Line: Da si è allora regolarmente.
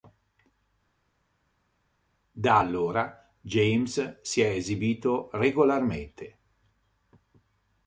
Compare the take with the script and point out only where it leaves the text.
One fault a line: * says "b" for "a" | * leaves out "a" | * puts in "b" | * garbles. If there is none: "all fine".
* puts in "allora James"
* says "esibito" for "allora"